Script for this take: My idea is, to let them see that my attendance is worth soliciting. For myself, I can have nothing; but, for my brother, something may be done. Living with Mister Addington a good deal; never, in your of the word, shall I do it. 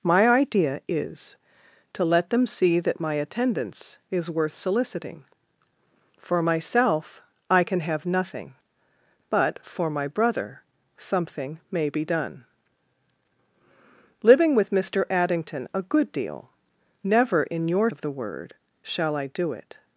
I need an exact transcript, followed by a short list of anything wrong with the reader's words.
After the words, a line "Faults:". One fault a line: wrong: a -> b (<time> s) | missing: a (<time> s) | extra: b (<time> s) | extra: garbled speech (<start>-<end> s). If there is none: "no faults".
My idea is, to let them see that my attendance is worth soliciting. For myself, I can have nothing; but, for my brother, something may be done. Living with Mister Addington a good deal; never, in your of the word, shall I do it.
Faults:
no faults